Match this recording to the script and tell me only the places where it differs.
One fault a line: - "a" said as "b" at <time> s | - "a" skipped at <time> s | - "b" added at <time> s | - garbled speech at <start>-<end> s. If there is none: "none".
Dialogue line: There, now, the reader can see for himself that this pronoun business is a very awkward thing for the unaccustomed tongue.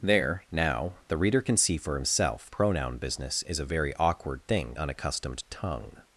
- "that this" skipped at 2.5 s
- "for the" skipped at 4.8 s